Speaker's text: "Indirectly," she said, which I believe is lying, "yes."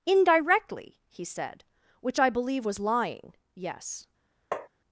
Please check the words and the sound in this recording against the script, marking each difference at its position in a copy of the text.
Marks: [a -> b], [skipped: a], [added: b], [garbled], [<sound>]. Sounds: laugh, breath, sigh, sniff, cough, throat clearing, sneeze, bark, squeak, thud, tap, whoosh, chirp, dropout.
"Indirectly," [she -> he] said, which I believe [is -> was] lying, "yes." [tap]